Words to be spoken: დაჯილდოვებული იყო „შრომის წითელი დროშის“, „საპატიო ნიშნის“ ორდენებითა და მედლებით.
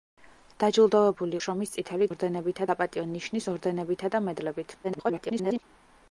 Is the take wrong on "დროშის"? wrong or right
wrong